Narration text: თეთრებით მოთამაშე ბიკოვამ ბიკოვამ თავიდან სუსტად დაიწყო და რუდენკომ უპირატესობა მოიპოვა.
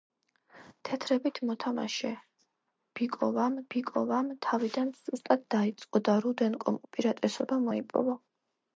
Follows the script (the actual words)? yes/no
yes